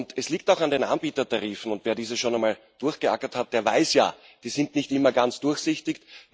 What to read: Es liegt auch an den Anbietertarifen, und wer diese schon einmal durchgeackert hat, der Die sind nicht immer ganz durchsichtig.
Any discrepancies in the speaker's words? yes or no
yes